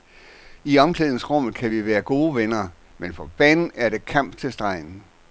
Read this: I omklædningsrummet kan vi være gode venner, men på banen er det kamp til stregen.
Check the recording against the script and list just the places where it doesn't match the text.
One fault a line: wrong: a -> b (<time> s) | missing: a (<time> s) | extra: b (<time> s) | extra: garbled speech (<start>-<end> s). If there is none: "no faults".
no faults